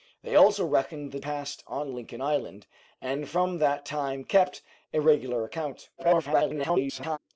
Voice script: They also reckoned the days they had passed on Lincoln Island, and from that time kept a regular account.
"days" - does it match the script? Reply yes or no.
no